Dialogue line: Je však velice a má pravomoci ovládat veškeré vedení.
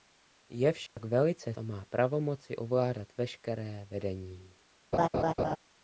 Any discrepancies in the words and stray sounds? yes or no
yes